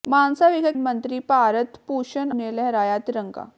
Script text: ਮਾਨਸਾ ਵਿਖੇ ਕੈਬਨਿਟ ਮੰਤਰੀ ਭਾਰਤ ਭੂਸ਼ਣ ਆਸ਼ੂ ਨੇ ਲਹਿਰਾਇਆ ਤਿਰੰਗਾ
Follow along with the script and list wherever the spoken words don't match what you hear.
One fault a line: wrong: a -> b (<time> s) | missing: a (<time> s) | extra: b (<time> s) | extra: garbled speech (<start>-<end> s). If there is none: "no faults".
missing: ਕੈਬਨਿਟ (0.7 s)
missing: ਆਸ਼ੂ (2.3 s)